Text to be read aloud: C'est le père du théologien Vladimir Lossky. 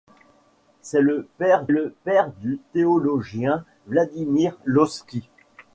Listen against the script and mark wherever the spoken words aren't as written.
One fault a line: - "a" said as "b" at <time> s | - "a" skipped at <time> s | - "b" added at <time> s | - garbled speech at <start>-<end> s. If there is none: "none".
- "le père" added at 1.7 s